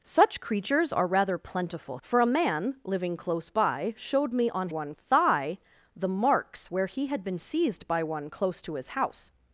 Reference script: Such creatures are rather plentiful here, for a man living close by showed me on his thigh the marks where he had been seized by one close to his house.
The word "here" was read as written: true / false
false